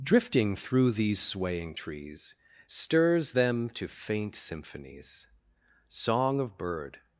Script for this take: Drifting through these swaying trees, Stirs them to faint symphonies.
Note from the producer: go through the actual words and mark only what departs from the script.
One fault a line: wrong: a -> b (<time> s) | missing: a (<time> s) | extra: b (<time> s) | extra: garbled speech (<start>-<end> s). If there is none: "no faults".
extra: Song of bird (5.9 s)